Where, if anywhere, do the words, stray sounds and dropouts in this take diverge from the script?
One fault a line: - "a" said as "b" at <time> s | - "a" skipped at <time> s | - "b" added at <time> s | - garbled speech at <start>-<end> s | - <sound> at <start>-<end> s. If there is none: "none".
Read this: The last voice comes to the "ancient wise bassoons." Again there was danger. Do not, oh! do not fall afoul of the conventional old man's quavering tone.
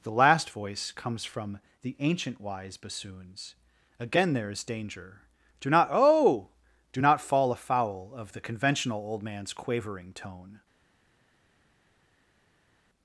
- "to" said as "from" at 1.3 s
- "was" said as "is" at 4.5 s